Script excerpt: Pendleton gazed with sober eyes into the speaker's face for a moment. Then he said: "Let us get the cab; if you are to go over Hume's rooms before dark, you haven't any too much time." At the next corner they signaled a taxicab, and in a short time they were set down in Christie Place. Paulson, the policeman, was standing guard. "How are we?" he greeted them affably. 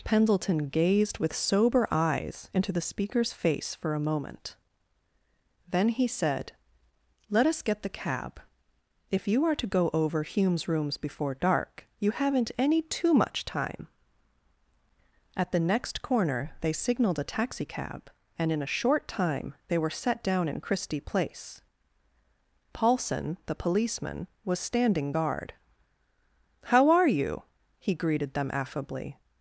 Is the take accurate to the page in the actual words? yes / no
no